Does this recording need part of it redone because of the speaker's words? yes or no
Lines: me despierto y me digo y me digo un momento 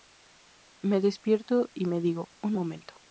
yes